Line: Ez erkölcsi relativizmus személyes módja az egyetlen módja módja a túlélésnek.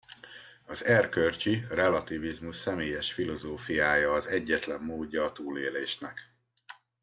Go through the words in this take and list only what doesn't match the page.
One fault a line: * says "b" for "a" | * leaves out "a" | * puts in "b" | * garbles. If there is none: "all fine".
* says "Az" for "Ez"
* says "filozófiája" for "módja"
* leaves out "módja"